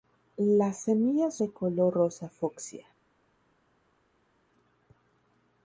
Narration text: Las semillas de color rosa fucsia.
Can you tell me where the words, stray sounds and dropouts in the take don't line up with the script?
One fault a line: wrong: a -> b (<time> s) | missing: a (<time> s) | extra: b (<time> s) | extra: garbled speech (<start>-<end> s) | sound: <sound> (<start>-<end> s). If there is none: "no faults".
no faults